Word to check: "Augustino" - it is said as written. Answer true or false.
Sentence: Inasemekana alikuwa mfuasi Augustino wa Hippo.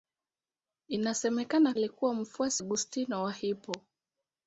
true